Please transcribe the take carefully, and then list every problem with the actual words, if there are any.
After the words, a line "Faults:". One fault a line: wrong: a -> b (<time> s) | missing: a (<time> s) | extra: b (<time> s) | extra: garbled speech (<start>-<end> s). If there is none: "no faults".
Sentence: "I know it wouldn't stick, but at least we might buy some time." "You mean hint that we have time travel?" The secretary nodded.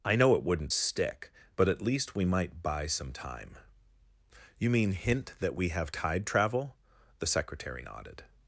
"I know it wouldn't stick, but at least we might buy some time." "You mean hint that we have tide travel?" The secretary nodded.
Faults:
wrong: time -> tide (5.9 s)